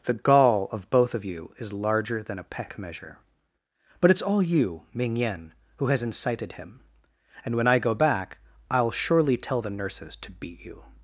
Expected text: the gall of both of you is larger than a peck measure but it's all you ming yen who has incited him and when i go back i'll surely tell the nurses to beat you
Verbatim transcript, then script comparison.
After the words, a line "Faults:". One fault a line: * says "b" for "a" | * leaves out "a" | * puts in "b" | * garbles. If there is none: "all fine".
the gall of both of you is larger than a peck measure but it's all you ming yen who has incited him and when i go back i'll surely tell the nurses to beat you
Faults:
all fine